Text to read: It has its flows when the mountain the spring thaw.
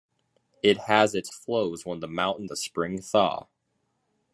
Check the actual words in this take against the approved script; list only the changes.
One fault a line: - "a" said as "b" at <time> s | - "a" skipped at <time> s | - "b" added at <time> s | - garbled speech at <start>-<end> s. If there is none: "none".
none